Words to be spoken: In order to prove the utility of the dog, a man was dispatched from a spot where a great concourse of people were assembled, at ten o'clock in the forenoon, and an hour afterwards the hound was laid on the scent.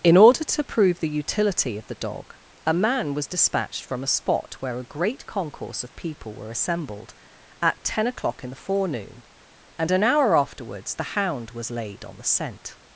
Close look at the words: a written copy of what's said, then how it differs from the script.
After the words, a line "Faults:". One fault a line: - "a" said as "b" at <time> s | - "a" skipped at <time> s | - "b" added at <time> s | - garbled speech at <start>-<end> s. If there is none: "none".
In order to prove the utility of the dog, a man was dispatched from a spot where a great concourse of people were assembled, at ten o'clock in the forenoon, and an hour afterwards the hound was laid on the scent.
Faults:
none